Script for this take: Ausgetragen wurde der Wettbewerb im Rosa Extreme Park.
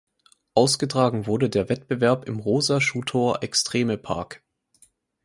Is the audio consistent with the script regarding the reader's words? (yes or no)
no